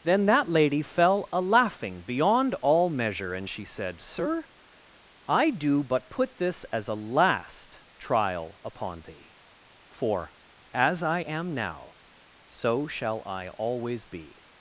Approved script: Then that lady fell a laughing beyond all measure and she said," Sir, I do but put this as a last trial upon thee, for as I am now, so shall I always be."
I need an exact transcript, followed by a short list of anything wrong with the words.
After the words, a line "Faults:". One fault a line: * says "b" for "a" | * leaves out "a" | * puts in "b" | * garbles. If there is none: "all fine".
Then that lady fell a laughing beyond all measure and she said," Sir, I do but put this as a last trial upon thee, for as I am now, so shall I always be."
Faults:
all fine